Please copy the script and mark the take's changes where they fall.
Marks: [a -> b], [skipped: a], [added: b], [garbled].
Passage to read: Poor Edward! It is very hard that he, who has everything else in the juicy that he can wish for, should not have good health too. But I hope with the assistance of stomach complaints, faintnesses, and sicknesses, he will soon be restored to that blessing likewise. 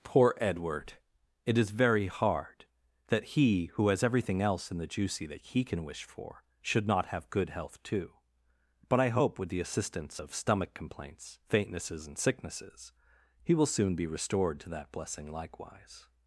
Poor Edward! It is very hard that he, who has everything else in the juicy that he can wish for, should not have good health too. But I hope with the assistance of stomach complaints, faintnesses, and sicknesses, he will soon be restored to that blessing likewise.